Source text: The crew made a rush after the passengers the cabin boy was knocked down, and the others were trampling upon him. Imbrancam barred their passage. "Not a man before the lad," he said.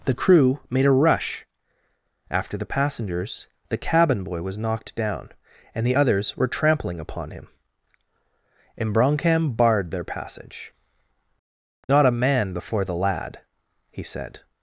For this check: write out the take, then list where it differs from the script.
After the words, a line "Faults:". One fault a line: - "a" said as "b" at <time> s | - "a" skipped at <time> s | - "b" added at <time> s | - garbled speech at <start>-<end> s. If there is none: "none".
The crew made a rush after the passengers the cabin boy was knocked down, and the others were trampling upon him. Imbrancam barred their passage. "Not a man before the lad," he said.
Faults:
none